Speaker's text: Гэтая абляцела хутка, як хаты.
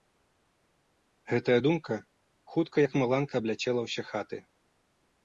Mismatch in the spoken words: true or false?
true